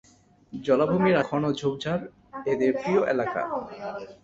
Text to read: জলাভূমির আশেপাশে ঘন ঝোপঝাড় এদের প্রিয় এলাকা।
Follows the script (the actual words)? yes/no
no